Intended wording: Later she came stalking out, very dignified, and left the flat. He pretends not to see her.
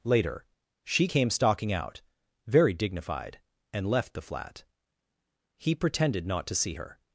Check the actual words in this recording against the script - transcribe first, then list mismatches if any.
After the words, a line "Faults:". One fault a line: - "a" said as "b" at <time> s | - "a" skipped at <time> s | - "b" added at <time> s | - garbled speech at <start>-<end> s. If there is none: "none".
Later she came stalking out, very dignified, and left the flat. He pretended not to see her.
Faults:
- "pretends" said as "pretended" at 5.7 s